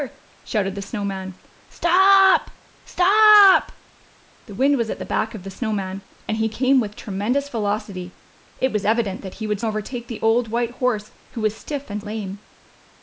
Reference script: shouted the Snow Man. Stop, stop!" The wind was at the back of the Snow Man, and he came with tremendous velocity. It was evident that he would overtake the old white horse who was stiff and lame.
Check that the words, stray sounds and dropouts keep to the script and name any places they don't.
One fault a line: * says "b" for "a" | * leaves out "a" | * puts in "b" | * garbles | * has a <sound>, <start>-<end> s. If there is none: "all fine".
all fine